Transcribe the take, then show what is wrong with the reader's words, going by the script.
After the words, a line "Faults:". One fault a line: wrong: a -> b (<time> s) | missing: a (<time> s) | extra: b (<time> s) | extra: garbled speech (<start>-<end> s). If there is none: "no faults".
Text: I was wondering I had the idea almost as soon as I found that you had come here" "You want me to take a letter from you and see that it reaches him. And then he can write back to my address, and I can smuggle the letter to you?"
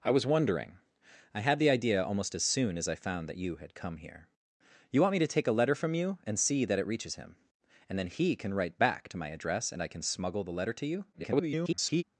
I was wondering I had the idea almost as soon as I found that you had come here" "You want me to take a letter from you and see that it reaches him. And then he can write back to my address, and I can smuggle the letter to you?" [garbled]
Faults:
extra: garbled speech (11.1-12.0 s)